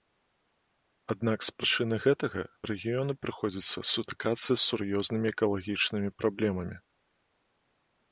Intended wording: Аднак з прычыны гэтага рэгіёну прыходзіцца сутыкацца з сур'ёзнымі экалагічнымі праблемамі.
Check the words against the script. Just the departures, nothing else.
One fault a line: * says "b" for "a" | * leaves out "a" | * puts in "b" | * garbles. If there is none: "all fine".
all fine